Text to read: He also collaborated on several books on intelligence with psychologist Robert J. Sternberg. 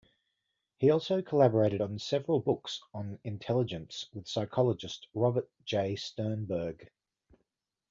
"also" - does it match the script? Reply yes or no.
yes